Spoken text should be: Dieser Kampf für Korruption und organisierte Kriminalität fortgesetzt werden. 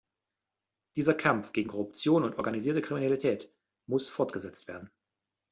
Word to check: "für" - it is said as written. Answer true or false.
false